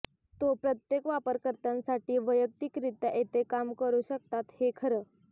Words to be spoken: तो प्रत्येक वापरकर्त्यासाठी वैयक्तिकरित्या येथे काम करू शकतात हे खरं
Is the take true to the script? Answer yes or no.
yes